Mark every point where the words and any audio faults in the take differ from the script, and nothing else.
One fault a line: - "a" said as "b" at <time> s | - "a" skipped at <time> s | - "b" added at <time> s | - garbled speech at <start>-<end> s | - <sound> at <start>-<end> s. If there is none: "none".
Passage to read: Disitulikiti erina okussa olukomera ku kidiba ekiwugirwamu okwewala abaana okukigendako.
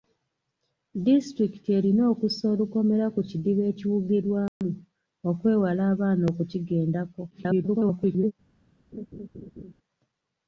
- dropout at 4.5-4.6 s
- garbled speech at 7.3-8.3 s
- laugh at 8.9-9.7 s